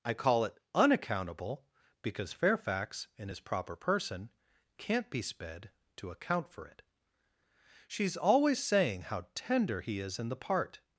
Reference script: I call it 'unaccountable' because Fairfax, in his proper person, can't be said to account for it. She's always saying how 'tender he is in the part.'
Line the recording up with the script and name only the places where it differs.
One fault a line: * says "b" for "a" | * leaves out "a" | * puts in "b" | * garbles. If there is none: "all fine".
* says "sped" for "said"